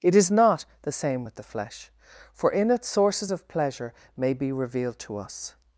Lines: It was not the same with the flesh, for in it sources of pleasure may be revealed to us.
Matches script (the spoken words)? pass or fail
fail